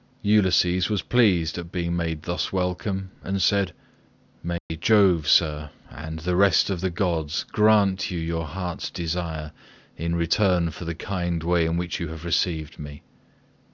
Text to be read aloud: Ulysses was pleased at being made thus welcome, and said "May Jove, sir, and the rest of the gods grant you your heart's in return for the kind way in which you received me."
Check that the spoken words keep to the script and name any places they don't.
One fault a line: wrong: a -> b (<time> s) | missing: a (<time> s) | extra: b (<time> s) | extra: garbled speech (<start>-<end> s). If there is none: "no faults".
extra: desire (8.9 s)
extra: have (12.1 s)